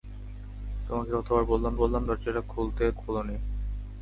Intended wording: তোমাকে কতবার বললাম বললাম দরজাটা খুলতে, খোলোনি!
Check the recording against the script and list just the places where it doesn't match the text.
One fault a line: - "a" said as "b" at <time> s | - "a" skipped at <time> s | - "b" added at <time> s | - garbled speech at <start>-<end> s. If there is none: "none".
none